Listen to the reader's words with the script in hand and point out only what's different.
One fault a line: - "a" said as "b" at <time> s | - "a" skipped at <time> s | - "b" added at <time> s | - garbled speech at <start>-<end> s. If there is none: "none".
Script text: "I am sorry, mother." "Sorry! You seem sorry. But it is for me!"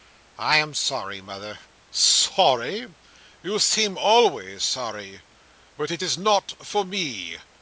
- "always" added at 4.0 s
- "not" added at 6.2 s